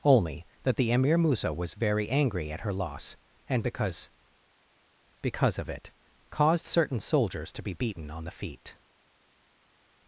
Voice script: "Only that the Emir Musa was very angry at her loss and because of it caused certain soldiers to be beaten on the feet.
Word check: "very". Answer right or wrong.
right